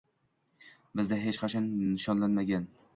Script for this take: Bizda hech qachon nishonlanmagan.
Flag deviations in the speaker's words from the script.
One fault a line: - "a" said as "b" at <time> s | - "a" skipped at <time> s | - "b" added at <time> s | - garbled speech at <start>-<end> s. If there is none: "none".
none